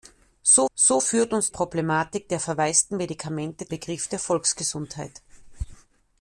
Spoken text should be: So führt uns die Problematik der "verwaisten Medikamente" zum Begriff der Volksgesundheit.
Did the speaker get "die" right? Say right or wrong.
wrong